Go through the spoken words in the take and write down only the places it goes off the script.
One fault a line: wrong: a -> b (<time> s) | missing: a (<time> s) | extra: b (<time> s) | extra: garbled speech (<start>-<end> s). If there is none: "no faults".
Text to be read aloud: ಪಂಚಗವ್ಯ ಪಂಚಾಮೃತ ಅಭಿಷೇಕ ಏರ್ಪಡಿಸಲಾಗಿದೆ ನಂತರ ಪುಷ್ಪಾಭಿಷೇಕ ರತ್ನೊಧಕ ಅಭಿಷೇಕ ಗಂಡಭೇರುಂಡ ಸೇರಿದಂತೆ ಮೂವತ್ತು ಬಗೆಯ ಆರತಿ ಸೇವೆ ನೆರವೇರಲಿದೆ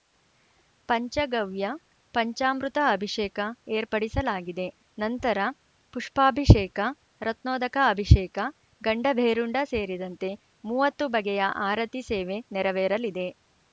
no faults